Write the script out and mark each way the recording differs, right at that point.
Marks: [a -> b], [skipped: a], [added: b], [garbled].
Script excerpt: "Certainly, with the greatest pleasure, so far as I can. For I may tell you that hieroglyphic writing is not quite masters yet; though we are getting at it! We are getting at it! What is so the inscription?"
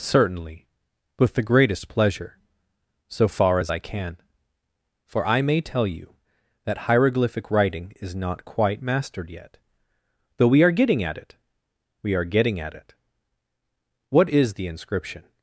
"Certainly, with the greatest pleasure, so far as I can. For I may tell you that hieroglyphic writing is not quite [masters -> mastered] yet; though we are getting at it! We are getting at it! What is [skipped: so] the inscription?"